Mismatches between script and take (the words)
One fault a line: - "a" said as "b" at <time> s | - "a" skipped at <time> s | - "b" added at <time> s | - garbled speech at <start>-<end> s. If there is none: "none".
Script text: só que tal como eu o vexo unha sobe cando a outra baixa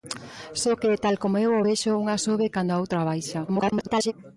- garbled speech at 3.5-4.1 s